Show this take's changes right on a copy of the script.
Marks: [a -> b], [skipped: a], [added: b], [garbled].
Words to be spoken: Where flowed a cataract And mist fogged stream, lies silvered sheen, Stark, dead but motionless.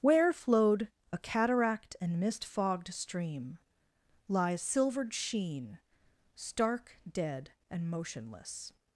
Where flowed a cataract And mist fogged stream, lies silvered sheen, Stark, dead [but -> and] motionless.